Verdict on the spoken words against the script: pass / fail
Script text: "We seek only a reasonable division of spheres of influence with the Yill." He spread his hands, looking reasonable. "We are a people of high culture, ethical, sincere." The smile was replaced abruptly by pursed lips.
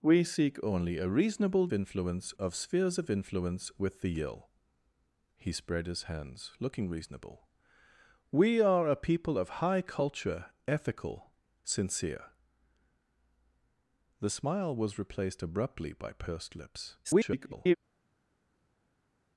fail